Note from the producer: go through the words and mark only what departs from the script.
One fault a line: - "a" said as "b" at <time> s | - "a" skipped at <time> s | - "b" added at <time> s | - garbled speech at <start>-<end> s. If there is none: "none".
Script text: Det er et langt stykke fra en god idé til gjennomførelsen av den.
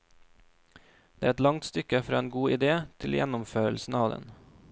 none